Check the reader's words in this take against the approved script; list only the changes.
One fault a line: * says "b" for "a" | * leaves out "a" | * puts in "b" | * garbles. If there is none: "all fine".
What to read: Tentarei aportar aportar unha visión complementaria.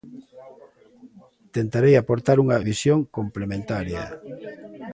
* leaves out "aportar"